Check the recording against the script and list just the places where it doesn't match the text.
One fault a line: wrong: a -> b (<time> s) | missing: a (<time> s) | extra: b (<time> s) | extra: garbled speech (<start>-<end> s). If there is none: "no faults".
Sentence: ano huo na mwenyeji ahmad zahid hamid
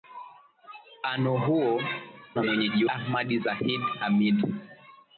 no faults